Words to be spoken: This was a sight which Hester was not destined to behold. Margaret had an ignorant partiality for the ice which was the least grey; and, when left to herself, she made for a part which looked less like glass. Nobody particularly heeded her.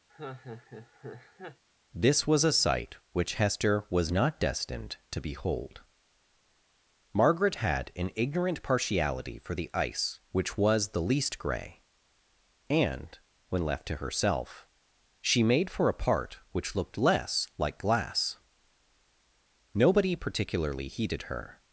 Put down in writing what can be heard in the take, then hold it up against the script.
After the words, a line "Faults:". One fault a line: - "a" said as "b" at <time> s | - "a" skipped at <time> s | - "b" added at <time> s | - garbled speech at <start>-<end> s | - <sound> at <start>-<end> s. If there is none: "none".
This was a sight which Hester was not destined to behold. Margaret had an ignorant partiality for the ice which was the least grey; and, when left to herself, she made for a part which looked less like glass. Nobody particularly heeded her.
Faults:
- laugh at 0.1-1.6 s